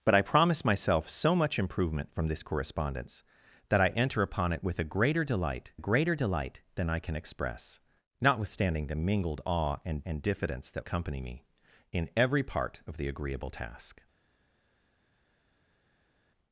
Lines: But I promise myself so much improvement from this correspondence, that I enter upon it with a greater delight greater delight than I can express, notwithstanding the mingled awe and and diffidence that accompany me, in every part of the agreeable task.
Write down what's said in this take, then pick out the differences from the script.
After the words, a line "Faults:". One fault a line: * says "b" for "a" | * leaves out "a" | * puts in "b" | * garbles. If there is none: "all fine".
But I promise myself so much improvement from this correspondence, that I enter upon it with a greater delight greater delight than I can express, notwithstanding the mingled awe and and diffidence that accompany me, in every part of the agreeable task.
Faults:
all fine